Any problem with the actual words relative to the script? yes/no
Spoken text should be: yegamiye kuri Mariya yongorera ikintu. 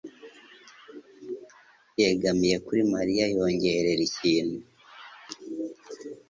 no